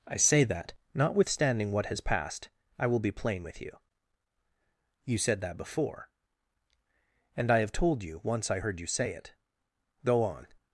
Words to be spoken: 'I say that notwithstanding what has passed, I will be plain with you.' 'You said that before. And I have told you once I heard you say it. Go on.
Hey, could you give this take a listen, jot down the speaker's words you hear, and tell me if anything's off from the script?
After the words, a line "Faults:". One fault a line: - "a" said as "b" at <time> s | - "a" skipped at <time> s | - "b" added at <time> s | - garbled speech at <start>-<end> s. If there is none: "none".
'I say that notwithstanding what has passed, I will be plain with you.' 'You said that before. And I have told you once I heard you say it. Go on.
Faults:
none